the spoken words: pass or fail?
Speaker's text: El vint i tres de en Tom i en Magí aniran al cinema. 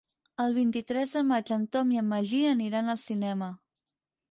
fail